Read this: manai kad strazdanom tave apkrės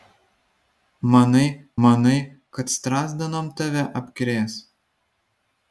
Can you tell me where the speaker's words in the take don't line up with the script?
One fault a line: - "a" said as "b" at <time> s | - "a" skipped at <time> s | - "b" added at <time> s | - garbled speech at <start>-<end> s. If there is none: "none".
- "manai" added at 1.9 s